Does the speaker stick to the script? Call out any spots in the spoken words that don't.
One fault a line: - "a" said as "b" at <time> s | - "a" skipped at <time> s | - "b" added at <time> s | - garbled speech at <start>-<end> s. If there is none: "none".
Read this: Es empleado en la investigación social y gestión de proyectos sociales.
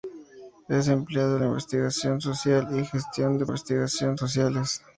- "proyectos" said as "investigación" at 3.4 s